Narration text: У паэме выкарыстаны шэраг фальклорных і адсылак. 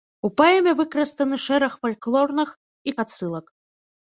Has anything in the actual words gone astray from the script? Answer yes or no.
no